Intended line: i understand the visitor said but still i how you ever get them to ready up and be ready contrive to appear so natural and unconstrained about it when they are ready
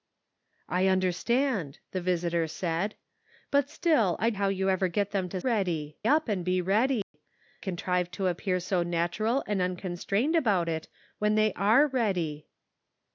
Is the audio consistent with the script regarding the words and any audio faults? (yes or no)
no